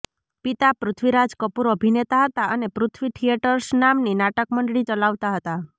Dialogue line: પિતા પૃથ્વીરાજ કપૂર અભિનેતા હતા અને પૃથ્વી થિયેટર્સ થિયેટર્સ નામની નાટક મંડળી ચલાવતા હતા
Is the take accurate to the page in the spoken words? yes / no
no